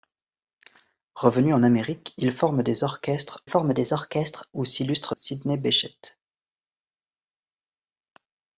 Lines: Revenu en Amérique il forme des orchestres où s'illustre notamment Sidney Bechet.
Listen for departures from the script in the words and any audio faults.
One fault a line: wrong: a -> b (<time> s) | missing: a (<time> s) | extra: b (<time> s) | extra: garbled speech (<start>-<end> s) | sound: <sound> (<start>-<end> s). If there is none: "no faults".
extra: forme des orchestres (3.4 s)
missing: notamment (5.1 s)